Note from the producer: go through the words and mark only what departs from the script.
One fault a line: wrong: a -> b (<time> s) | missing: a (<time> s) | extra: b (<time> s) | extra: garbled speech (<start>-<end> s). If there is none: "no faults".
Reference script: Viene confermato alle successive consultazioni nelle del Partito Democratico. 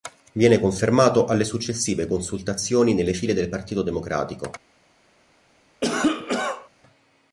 extra: file (3.1 s)